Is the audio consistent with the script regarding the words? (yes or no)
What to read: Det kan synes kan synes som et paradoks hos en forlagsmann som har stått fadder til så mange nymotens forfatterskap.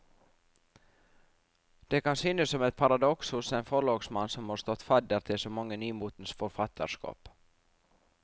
no